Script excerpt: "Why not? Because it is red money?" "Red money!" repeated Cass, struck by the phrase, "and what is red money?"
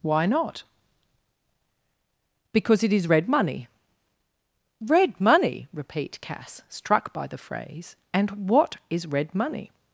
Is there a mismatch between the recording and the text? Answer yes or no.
yes